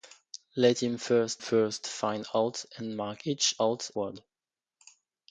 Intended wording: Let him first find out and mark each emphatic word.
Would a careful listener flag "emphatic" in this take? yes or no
yes